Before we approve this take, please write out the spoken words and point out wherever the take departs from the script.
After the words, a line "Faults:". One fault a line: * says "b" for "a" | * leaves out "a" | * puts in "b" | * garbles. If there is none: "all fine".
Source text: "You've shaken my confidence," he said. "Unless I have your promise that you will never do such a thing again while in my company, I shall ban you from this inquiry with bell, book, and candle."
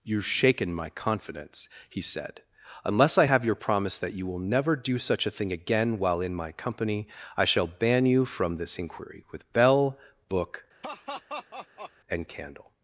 "You've shaken my confidence," he said. "Unless I have your promise that you will never do such a thing again while in my company, I shall ban you from this inquiry with bell, book, and candle."
Faults:
all fine